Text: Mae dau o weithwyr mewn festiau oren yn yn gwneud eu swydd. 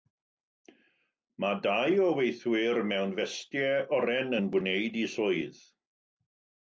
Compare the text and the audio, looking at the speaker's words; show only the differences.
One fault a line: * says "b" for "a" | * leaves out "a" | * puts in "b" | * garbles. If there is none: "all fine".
* leaves out "yn"